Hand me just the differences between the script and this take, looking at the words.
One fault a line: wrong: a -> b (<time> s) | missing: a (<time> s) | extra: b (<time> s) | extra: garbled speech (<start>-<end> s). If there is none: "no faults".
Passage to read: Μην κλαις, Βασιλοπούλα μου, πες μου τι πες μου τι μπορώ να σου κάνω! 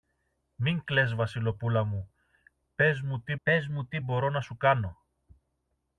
no faults